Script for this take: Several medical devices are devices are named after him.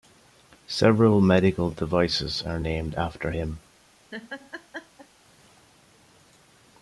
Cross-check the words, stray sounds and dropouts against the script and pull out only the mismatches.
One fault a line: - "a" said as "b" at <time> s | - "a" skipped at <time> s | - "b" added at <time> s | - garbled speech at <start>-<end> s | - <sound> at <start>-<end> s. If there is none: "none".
- "devices are" skipped at 2.6 s
- laugh at 4.1-5.1 s